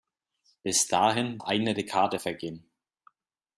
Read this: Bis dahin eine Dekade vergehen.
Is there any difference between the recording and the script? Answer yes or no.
no